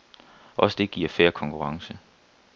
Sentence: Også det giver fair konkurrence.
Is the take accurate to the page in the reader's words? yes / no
yes